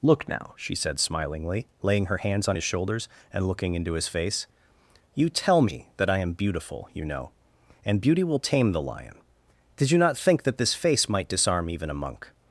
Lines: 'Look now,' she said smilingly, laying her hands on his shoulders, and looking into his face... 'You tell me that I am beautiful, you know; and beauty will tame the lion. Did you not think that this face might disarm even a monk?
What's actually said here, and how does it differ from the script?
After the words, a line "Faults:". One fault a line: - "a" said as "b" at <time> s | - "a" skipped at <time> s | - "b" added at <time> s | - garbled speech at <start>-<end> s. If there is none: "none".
'Look now,' she said smilingly, laying her hands on his shoulders, and looking into his face... 'You tell me that I am beautiful, you know; and beauty will tame the lion. Did you not think that this face might disarm even a monk?
Faults:
none